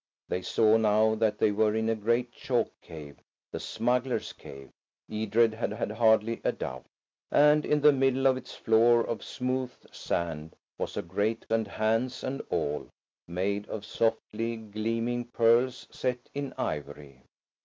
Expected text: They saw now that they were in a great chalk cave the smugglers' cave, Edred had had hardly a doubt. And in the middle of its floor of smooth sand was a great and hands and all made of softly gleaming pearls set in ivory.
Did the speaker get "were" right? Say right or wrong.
right